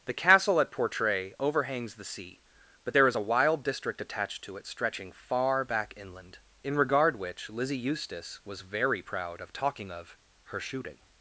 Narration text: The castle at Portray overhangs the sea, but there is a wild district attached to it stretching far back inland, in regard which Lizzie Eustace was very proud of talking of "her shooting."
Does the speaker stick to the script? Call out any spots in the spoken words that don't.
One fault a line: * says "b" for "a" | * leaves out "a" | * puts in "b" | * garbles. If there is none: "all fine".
all fine